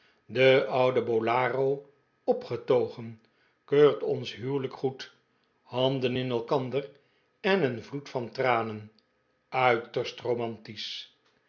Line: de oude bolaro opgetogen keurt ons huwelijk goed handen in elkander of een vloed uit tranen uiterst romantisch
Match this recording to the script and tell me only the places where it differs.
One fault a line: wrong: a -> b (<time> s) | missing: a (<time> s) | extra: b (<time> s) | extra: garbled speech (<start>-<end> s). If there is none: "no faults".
wrong: of -> en (7.4 s)
wrong: uit -> van (8.1 s)